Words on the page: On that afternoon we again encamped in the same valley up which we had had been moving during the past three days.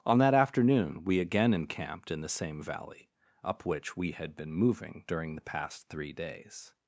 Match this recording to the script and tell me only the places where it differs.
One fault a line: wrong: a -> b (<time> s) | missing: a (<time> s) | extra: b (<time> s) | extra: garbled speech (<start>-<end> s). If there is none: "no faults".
missing: had (4.3 s)